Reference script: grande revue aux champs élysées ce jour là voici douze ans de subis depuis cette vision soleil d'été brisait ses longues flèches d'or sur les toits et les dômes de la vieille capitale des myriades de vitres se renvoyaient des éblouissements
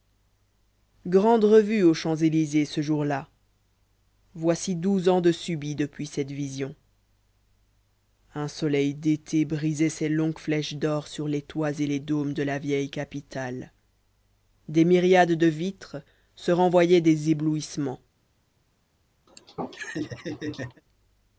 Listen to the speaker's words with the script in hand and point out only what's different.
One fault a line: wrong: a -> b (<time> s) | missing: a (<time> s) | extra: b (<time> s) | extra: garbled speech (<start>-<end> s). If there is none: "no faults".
extra: un (8.3 s)